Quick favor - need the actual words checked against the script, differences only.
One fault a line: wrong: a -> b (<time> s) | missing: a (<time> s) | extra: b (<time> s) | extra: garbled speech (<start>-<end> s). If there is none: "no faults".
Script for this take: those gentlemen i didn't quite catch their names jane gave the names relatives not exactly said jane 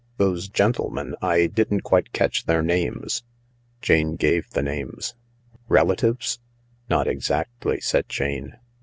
no faults